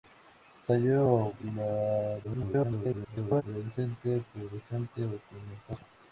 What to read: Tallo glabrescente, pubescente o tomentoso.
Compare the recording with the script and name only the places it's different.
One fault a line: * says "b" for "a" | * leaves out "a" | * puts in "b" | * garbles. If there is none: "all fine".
* garbles